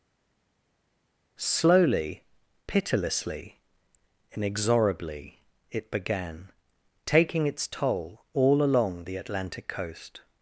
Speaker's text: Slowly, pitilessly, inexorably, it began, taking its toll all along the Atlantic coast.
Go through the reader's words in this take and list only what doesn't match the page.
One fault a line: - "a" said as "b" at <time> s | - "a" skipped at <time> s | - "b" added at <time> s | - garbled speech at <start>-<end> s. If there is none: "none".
none